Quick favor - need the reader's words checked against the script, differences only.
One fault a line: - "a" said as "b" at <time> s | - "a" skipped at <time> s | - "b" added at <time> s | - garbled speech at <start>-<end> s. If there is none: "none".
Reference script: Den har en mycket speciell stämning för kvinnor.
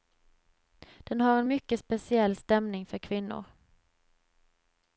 none